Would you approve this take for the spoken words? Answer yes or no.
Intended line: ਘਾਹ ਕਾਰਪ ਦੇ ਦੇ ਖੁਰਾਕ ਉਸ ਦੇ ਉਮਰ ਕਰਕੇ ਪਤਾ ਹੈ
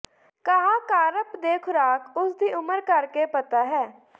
no